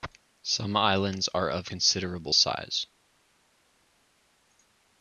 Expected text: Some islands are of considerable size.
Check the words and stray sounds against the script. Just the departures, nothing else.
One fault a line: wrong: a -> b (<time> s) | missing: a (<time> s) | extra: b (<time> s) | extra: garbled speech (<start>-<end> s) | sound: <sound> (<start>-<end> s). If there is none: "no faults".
no faults